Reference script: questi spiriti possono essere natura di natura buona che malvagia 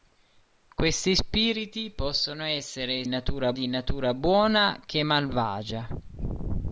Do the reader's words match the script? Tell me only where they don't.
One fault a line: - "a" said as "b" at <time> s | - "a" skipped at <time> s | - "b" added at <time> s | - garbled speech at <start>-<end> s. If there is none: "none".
none